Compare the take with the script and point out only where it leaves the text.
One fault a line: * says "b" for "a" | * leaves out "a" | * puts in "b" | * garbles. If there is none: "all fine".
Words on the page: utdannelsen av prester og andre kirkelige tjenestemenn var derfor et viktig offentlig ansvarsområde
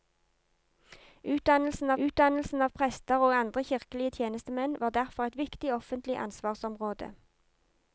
* puts in "utdannelsen"